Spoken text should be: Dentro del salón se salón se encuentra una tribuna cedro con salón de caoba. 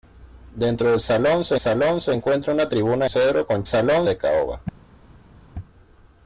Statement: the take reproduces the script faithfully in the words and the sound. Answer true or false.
true